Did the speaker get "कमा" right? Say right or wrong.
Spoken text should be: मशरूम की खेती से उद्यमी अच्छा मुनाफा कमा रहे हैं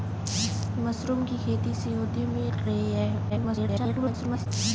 wrong